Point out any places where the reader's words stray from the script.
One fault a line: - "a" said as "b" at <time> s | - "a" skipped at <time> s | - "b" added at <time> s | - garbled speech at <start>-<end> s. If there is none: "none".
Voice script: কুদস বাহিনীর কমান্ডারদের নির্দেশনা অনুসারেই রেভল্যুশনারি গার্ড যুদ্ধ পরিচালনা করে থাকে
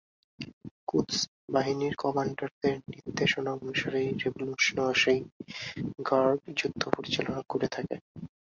none